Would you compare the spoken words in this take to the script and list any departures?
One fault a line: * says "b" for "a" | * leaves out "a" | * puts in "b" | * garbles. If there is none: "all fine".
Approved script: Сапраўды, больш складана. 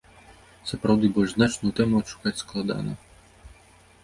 * puts in "значную тэму адшукаць"